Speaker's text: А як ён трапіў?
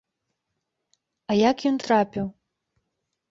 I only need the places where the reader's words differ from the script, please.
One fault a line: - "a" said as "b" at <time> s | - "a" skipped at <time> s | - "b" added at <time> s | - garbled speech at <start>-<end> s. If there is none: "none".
none